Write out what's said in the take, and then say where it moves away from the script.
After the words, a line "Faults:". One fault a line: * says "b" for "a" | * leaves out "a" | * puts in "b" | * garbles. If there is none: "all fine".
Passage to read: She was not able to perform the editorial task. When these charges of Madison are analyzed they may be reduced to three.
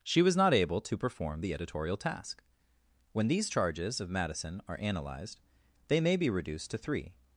She was not able to perform the editorial task. When these charges of Madison are analyzed they may be reduced to three.
Faults:
all fine